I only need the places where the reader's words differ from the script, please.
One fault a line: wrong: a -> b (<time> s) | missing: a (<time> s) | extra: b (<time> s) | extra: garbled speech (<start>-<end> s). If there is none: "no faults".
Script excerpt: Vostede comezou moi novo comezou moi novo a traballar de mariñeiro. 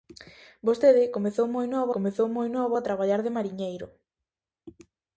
no faults